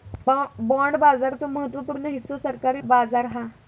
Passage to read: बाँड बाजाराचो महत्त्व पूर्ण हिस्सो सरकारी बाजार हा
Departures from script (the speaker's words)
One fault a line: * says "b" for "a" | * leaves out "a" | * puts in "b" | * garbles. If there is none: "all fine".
all fine